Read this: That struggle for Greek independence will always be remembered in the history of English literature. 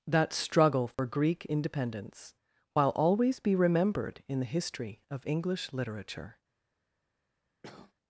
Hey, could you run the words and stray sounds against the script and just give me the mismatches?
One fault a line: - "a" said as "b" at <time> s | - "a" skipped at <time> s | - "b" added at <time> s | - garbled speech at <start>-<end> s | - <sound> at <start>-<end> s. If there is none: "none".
- dropout at 0.9-1.0 s
- "will" said as "while" at 2.7 s
- cough at 7.6-7.9 s